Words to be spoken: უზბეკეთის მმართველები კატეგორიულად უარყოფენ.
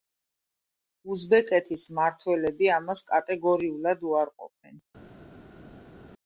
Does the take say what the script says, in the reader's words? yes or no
no